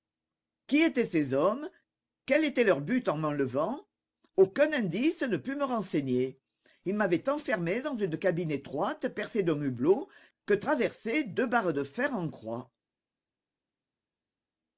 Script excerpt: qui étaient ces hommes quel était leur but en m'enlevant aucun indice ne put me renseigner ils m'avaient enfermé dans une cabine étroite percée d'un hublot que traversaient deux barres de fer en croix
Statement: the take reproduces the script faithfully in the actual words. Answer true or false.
true